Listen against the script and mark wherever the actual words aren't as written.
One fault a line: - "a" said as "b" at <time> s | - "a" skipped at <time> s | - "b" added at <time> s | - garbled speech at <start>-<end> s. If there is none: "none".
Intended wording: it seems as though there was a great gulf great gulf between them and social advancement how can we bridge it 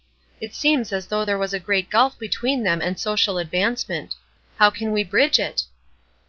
- "great gulf" skipped at 2.2 s